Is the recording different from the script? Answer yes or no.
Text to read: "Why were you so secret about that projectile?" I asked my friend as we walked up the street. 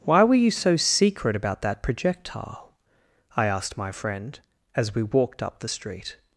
no